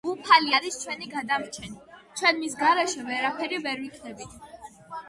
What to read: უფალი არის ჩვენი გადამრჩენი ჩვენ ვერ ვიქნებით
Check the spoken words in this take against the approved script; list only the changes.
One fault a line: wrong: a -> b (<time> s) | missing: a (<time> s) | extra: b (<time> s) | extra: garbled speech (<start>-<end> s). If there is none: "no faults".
extra: მის გარეშე ვერაფერი (2.4 s)